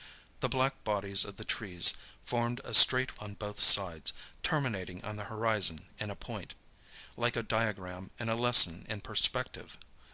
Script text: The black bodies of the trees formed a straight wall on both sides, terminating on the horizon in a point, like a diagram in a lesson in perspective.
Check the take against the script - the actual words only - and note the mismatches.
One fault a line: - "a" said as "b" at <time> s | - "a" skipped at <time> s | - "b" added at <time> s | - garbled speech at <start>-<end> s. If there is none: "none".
- "wall" skipped at 3.2 s